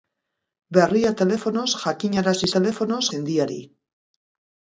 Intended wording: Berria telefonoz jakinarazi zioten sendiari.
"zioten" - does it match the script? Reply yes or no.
no